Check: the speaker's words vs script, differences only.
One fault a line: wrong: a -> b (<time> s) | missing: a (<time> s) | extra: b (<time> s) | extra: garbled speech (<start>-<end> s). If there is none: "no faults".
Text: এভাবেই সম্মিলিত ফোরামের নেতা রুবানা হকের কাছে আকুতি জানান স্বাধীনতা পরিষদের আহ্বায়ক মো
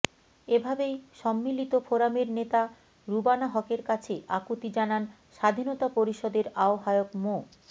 no faults